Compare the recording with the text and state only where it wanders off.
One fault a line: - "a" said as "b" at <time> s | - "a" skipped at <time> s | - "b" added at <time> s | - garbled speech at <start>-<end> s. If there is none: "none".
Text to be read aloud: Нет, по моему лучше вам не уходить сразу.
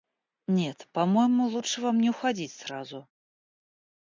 none